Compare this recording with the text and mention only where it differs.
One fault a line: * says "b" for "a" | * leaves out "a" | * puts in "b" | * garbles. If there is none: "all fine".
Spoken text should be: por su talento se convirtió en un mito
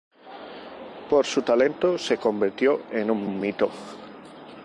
* puts in "un"